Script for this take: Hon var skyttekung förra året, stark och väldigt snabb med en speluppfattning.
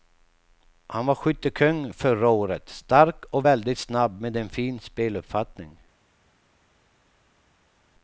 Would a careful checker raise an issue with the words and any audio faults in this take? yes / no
yes